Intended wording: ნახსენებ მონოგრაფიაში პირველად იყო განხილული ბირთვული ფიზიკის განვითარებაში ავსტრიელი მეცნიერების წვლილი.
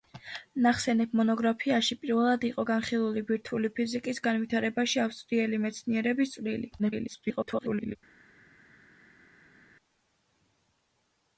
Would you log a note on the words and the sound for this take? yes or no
yes